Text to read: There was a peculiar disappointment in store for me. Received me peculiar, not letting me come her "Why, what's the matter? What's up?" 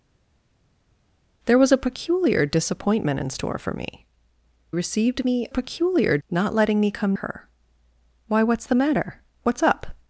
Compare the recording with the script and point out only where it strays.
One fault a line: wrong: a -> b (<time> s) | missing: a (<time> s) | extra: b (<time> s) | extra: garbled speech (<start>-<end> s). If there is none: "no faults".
no faults